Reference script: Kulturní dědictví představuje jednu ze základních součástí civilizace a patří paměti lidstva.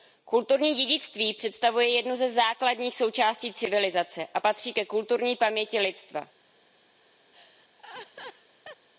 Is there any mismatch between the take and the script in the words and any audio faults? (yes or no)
yes